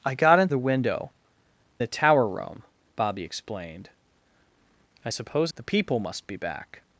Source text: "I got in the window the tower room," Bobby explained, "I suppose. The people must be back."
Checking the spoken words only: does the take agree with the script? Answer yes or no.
yes